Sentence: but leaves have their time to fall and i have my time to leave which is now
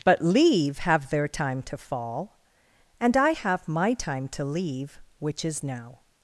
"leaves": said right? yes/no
no